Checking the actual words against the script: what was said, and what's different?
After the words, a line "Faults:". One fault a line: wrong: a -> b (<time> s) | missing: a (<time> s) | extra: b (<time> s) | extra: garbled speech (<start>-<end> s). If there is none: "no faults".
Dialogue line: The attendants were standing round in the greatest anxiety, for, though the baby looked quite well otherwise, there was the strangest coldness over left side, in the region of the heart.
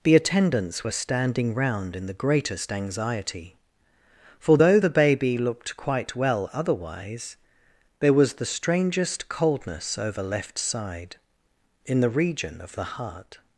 The attendants were standing round in the greatest anxiety, for, though the baby looked quite well otherwise, there was the strangest coldness over left side, in the region of the heart.
Faults:
no faults